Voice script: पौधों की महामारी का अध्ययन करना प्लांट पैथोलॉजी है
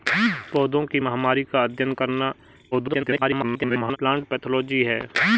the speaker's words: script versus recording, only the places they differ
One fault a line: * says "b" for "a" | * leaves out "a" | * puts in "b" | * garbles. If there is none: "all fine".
* garbles